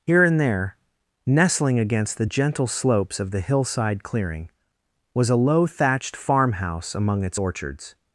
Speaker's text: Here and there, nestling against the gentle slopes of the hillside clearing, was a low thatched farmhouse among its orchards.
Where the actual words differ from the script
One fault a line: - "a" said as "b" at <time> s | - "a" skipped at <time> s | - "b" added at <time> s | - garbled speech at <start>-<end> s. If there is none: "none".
none